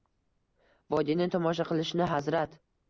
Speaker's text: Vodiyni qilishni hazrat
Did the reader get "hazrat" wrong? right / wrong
right